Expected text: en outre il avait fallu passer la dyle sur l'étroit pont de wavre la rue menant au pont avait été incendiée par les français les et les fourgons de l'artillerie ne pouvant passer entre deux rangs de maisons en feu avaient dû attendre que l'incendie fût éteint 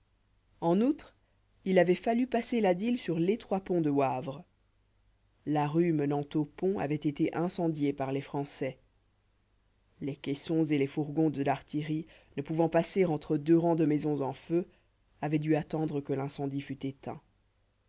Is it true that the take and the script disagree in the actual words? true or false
true